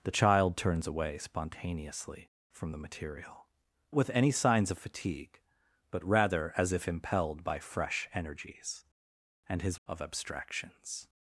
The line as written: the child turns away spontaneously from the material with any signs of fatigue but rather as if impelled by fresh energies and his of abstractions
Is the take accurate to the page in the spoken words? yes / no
yes